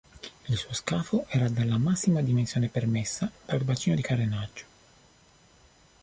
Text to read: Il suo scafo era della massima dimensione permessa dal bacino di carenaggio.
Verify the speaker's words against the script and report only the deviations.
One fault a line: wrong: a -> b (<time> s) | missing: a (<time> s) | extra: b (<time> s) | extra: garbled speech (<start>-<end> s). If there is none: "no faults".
no faults